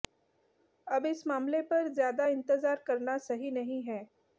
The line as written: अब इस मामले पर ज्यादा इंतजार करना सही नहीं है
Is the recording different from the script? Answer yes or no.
no